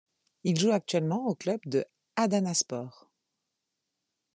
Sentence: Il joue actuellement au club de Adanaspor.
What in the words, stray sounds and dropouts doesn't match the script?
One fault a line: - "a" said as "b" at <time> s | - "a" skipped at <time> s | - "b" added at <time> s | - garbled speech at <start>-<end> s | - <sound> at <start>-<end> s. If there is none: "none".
none